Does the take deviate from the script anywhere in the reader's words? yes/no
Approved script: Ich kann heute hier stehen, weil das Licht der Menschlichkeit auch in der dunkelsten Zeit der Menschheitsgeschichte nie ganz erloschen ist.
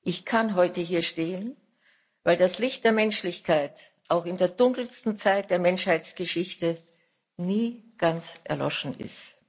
no